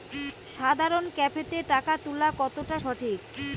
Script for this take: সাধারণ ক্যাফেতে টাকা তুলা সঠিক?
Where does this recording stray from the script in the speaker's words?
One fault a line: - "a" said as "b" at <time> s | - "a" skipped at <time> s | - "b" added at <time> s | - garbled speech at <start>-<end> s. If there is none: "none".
- "কতটা" added at 2.4 s